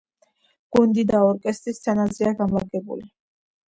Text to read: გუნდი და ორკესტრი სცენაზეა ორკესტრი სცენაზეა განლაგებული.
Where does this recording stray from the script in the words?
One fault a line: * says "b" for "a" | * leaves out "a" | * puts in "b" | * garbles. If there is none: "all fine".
* leaves out "ორკესტრი სცენაზეა"